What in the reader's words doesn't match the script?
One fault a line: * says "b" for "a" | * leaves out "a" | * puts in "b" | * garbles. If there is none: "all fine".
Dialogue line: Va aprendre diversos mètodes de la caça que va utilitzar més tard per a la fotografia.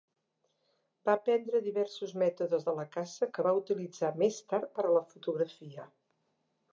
all fine